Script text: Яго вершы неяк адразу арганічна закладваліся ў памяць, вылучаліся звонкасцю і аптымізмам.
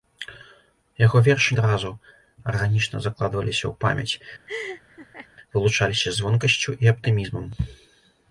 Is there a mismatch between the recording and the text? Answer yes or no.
yes